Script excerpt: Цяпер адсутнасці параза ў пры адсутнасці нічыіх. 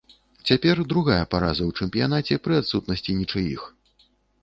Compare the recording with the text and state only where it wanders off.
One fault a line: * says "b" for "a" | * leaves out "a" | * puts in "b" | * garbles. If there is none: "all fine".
* says "другая" for "адсутнасці"
* puts in "чэмпіянаце"